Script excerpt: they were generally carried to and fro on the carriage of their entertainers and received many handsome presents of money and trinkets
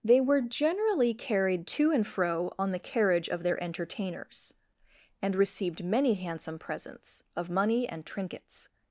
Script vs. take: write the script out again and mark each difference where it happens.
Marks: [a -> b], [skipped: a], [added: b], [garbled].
they were generally carried to and fro on the carriage of their entertainers and received many handsome presents of money and trinkets